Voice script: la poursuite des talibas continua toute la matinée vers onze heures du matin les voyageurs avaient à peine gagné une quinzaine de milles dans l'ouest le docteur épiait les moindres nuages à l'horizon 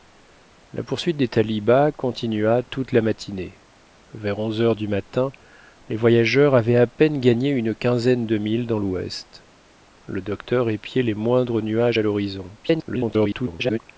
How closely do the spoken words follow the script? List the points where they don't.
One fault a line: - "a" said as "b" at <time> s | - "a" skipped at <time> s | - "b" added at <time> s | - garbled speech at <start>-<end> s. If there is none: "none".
- garbled speech at 12.6-13.8 s